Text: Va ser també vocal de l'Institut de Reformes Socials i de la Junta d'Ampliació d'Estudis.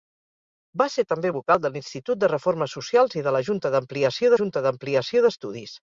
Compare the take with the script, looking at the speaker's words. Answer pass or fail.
fail